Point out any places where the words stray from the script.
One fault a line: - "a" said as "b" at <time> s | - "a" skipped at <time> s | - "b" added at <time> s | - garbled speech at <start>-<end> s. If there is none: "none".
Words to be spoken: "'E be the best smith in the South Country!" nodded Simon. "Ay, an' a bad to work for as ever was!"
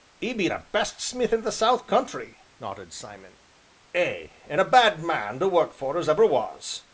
- "man" added at 5.0 s